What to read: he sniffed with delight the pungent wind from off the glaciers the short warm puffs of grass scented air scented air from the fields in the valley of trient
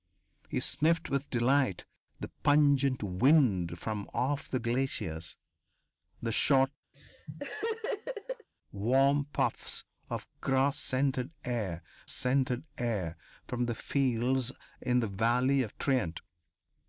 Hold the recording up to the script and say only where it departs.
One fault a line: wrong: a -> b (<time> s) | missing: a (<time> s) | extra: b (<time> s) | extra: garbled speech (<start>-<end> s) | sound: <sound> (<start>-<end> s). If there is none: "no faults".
sound: laugh (6.9-8.5 s)